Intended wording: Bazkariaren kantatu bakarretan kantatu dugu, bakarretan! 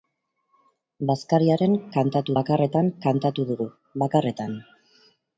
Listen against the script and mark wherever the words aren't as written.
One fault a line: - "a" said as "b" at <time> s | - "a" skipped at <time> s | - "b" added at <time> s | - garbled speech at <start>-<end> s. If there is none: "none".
none